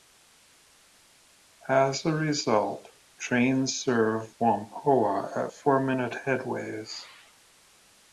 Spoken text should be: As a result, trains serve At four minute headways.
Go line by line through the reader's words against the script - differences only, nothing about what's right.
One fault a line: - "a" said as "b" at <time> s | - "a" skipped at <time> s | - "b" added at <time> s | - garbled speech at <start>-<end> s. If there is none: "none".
- "Whampoa" added at 4.4 s